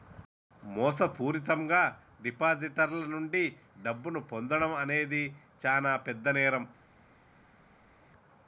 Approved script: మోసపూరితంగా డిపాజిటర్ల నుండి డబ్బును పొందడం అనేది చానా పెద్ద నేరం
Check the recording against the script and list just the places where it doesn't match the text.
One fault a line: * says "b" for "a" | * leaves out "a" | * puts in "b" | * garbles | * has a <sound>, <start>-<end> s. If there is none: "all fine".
all fine